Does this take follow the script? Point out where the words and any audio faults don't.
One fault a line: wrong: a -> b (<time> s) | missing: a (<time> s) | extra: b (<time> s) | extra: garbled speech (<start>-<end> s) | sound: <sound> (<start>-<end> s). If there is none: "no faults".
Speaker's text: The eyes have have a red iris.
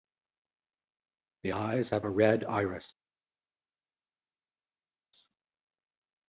missing: have (2.0 s)